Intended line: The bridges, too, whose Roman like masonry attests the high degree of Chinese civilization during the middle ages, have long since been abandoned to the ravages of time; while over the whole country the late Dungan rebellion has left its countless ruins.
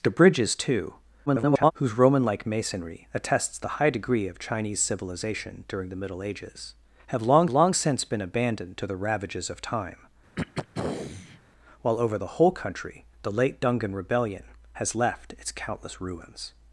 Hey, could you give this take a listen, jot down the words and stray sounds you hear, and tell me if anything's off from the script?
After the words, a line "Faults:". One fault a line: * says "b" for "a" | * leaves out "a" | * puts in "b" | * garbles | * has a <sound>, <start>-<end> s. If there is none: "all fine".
The bridges, too, [garbled] whose Roman like masonry attests the high degree of Chinese civilization during the middle ages, have long long since been abandoned to the ravages of time; while over the whole country the late Dungan rebellion has left its countless ruins.
Faults:
* garbles
* puts in "long"
* has a throat clearing, 10.4-11.4 s